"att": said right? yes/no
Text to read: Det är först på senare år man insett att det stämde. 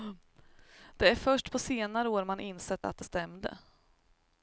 yes